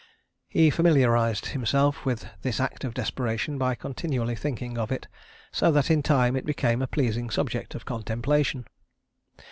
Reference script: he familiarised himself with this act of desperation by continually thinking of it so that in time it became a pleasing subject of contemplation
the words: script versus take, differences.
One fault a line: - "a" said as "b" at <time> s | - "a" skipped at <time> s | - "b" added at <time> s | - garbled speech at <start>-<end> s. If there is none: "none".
none